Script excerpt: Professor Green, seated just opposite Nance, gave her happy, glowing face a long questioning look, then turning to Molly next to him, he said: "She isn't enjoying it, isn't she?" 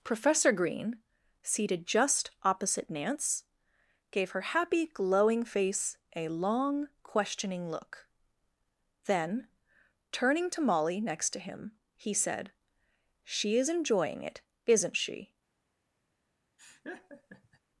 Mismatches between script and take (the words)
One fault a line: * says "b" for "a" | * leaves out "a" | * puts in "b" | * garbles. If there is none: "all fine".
* says "is" for "isn't"